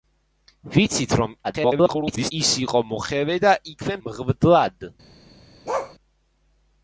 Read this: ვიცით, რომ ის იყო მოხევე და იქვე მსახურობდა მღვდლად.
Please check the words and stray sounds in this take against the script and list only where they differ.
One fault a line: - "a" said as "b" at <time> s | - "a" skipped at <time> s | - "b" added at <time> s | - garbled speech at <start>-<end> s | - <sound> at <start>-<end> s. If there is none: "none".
- garbled speech at 1.4-2.3 s
- "მსახურობდა" skipped at 4.0 s
- bark at 5.7-6.0 s